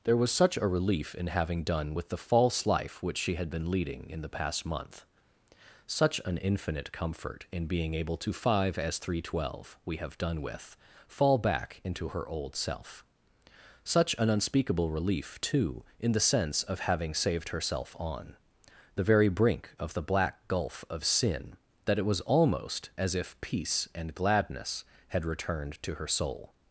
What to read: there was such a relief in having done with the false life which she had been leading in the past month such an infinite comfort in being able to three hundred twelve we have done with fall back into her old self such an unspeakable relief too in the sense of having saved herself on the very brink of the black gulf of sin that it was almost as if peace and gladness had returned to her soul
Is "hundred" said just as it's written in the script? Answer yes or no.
no